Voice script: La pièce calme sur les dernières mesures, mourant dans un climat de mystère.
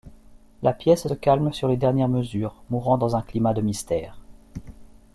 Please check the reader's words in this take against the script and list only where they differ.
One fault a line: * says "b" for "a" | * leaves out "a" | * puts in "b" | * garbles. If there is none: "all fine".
all fine